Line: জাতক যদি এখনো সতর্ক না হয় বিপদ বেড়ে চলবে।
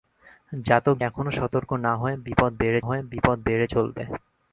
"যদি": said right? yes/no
no